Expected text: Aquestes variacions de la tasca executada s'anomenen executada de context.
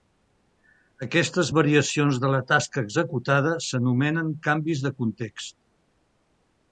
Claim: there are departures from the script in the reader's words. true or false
true